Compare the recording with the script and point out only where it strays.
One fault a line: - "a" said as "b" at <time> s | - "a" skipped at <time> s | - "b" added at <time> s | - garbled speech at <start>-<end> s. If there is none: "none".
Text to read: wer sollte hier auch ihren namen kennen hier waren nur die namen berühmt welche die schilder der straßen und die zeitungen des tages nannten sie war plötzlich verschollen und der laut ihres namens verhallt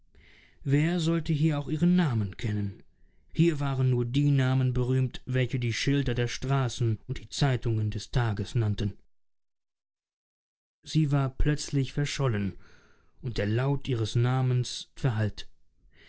none